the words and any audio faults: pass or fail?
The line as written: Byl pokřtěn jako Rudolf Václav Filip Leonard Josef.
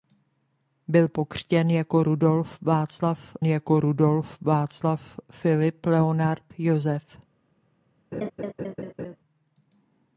fail